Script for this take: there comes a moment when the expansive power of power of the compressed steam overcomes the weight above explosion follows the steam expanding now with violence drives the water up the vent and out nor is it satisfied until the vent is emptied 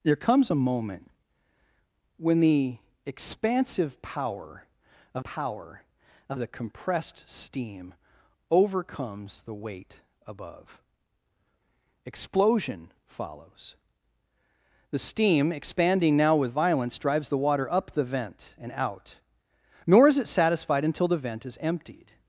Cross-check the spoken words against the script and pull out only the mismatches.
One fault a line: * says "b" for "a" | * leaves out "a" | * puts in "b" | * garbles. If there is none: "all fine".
all fine